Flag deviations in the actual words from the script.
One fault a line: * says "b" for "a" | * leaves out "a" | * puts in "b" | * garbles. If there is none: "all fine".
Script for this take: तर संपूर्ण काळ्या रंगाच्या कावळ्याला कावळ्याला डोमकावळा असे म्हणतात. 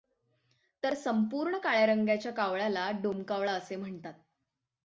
* leaves out "कावळ्याला"